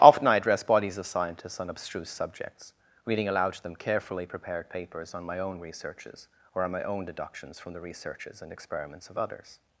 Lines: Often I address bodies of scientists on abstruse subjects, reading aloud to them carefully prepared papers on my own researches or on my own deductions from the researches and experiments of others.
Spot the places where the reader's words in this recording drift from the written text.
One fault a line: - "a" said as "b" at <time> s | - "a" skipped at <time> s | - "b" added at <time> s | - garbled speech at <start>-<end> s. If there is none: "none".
none